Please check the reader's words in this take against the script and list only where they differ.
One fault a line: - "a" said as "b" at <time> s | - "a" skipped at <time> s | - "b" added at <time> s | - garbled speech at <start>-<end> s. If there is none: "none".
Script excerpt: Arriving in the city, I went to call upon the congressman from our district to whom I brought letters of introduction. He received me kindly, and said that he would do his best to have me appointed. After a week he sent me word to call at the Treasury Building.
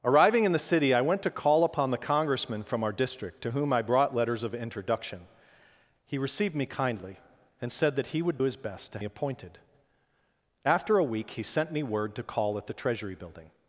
- "do" skipped at 8.4 s
- "have me" skipped at 9.0 s